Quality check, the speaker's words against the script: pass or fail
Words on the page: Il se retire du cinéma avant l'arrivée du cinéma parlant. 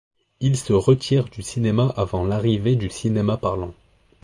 pass